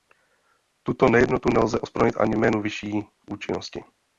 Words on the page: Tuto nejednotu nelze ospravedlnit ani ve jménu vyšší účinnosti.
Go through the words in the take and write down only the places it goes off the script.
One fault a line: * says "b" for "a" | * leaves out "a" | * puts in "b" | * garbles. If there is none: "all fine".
* leaves out "ve"